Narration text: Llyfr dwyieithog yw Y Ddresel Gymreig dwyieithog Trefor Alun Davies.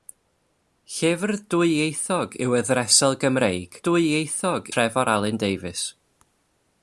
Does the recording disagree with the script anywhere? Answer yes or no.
no